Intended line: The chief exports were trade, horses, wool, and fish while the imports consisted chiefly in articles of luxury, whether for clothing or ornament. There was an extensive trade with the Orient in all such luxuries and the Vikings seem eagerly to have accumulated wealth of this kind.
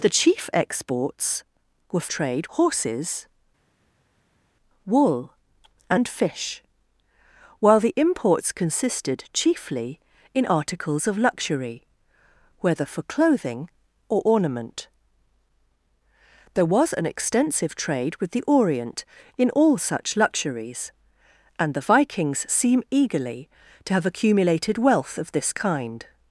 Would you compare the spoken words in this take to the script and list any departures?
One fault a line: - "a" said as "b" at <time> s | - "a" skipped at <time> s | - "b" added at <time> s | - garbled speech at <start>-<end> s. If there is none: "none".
none